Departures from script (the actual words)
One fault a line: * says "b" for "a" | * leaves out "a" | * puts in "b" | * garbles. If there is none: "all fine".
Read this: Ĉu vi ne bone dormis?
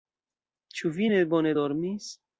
all fine